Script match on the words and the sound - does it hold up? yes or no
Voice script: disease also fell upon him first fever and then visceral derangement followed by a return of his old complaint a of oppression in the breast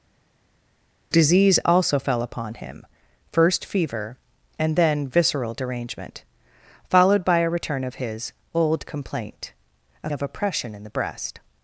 yes